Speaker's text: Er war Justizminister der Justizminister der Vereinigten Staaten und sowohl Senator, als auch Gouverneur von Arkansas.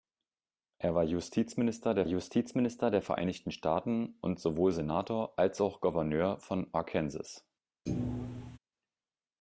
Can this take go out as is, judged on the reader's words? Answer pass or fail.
pass